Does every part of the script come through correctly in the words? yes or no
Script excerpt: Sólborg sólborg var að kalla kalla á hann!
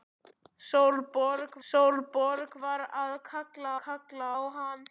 yes